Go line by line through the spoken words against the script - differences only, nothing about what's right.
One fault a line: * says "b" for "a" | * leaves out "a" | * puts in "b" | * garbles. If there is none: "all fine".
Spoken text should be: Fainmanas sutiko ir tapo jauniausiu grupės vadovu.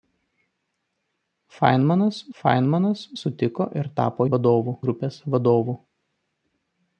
* puts in "fainmanas"
* says "vadovu" for "jauniausiu"